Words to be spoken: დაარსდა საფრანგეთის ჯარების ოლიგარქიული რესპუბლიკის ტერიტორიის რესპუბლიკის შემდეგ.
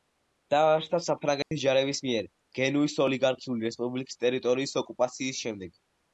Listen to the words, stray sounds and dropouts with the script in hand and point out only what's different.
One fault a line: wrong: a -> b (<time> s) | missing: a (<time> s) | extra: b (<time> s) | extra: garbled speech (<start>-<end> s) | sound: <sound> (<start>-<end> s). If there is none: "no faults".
sound: dropout (1.4-1.5 s)
extra: მიერ გენუის (2.1 s)
wrong: რესპუბლიკის -> ოკუპაციის (4.9 s)